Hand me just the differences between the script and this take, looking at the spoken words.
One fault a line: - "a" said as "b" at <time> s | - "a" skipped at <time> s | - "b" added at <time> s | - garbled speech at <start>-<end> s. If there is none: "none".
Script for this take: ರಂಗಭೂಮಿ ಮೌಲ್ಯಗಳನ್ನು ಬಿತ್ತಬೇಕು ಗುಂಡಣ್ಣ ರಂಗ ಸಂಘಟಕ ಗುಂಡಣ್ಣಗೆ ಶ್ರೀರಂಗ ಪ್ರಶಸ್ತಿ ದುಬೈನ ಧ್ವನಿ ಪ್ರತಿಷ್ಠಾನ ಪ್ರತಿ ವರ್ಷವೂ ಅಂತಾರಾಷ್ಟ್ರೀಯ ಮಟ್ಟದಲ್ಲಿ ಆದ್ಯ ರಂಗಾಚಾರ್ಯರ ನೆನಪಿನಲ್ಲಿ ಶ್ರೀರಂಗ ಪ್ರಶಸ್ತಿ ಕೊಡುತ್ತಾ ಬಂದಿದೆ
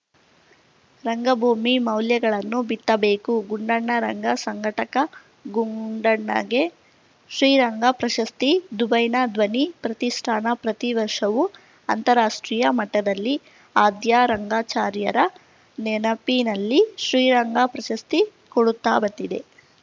none